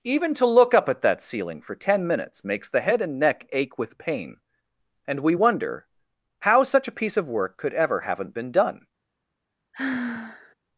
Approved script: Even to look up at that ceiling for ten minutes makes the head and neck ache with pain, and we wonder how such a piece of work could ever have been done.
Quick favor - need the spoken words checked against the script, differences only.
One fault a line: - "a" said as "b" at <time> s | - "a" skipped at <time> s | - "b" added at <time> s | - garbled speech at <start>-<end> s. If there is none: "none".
- "have" said as "haven't" at 8.0 s